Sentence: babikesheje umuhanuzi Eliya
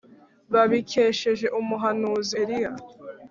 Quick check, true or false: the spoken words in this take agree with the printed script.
true